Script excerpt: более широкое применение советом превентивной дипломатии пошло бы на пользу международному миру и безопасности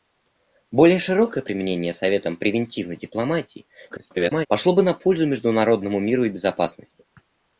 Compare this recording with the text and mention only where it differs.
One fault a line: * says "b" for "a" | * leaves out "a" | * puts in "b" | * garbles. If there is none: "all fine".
* garbles